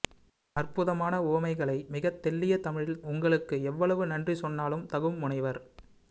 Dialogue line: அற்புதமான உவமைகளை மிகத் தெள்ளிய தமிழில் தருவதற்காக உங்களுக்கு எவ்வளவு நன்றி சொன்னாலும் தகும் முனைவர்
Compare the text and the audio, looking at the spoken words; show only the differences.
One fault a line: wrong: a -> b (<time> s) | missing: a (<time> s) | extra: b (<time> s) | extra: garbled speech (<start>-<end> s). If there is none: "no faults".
missing: தருவதற்காக (3.0 s)